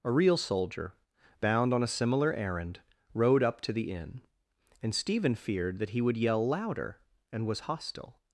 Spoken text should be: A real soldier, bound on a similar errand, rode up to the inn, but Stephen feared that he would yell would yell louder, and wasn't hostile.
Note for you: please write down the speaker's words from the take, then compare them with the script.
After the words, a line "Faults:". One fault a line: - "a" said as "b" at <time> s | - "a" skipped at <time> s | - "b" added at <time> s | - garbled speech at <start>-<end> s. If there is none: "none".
A real soldier, bound on a similar errand, rode up to the inn, and Stephen feared that he would yell louder, and was hostile.
Faults:
- "but" said as "and" at 4.8 s
- "would yell" skipped at 6.5 s
- "wasn't" said as "was" at 7.5 s